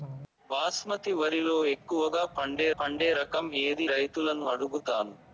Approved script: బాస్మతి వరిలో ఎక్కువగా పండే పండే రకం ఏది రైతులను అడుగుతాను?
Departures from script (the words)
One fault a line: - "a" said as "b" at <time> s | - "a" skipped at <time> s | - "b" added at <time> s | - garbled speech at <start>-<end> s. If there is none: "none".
none